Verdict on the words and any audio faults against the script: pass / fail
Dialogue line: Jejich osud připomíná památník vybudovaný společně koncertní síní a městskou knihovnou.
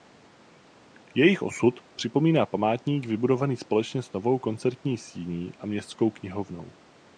fail